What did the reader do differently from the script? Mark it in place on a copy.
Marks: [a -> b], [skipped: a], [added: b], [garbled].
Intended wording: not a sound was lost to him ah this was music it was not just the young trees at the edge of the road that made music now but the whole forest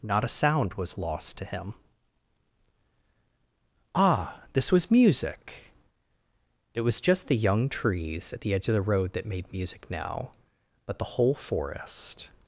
not a sound was lost to him ah this was music it was [skipped: not] just the young trees at the edge of the road that made music now but the whole forest